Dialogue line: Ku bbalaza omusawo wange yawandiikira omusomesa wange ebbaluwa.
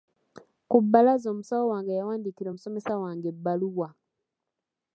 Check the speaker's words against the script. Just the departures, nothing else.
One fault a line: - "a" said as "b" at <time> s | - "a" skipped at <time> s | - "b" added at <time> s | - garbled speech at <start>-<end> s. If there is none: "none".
none